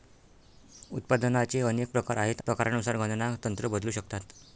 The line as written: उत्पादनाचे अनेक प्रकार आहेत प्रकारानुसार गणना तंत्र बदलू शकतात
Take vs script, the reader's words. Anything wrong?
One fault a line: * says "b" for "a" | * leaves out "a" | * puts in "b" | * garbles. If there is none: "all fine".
all fine